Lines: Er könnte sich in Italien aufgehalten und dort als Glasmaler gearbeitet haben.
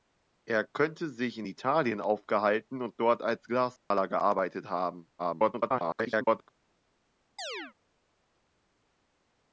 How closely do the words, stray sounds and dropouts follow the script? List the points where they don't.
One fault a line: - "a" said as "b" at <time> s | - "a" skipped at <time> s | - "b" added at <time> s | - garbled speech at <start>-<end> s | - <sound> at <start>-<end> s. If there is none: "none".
- dropout at 3.8-3.9 s
- garbled speech at 5.2-6.5 s
- chirp at 7.4-7.7 s